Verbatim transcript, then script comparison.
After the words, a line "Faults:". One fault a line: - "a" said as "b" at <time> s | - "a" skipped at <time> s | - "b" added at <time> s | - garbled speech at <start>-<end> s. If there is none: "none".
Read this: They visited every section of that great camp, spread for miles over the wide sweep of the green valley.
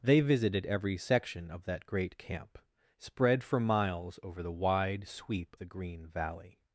They visited every section of that great camp, spread for miles over the wide sweep the green valley.
Faults:
- "of" skipped at 5.5 s